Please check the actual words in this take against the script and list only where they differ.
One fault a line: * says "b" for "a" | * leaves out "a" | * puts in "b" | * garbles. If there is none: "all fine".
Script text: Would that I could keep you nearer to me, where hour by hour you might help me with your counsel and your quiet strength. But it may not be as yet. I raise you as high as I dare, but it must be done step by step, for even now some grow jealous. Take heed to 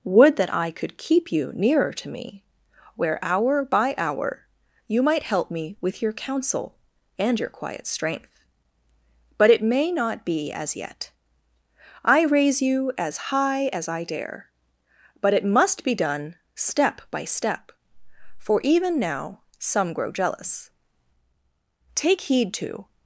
all fine